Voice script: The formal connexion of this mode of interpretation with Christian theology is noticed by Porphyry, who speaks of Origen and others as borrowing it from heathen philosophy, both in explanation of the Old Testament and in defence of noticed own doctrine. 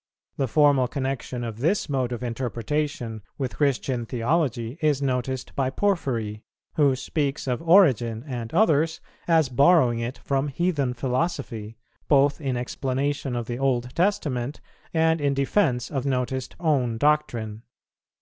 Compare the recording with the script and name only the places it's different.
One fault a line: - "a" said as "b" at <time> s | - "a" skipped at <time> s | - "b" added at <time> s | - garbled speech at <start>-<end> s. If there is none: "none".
none